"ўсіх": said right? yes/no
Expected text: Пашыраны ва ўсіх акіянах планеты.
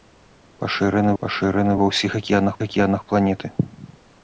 yes